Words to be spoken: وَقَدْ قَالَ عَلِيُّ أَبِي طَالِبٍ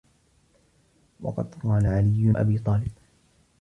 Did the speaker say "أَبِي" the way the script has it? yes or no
yes